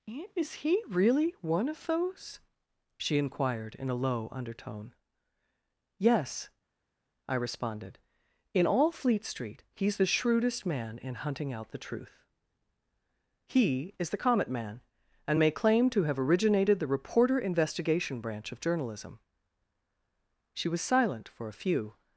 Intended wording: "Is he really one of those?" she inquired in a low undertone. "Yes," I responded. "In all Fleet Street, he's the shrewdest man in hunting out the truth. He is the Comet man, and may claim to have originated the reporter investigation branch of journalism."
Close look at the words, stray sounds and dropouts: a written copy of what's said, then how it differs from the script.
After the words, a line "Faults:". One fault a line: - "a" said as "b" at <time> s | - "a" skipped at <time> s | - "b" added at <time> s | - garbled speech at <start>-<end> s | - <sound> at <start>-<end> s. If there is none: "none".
"Is he really one of those?" she inquired in a low undertone. "Yes," I responded. "In all Fleet Street, he's the shrewdest man in hunting out the truth. He is the Comet man, and may claim to have originated the reporter investigation branch of journalism." She was silent for a few
Faults:
- "She was silent for a few" added at 20.5 s